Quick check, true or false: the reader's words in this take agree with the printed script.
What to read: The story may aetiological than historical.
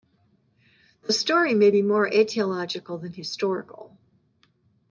false